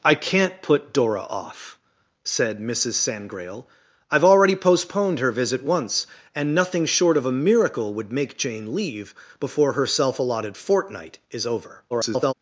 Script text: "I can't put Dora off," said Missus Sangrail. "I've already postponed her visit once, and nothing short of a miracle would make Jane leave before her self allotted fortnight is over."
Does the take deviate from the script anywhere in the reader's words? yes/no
yes